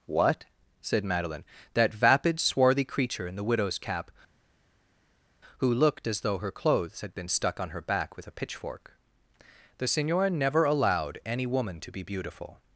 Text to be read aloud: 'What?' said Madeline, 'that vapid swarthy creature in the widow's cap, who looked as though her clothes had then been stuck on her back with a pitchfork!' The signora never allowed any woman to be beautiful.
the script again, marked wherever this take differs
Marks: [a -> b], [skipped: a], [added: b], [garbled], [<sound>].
'What?' said Madeline, 'that vapid swarthy creature in the widow's cap, who looked as though her clothes had [skipped: then] been stuck on her back with a pitchfork!' The signora never allowed any woman to be beautiful.